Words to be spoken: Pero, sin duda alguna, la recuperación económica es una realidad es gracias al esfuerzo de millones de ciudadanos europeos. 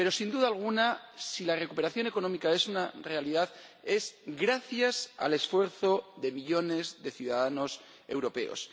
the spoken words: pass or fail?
fail